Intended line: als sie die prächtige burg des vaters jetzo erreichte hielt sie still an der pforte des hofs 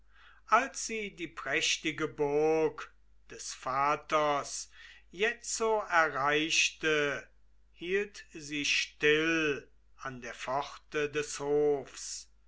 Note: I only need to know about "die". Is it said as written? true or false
true